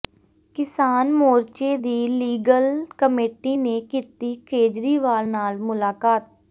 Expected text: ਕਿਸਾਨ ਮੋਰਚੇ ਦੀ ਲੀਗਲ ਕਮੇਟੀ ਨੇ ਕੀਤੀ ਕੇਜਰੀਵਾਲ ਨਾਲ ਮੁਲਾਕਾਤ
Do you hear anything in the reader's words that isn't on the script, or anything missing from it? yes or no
no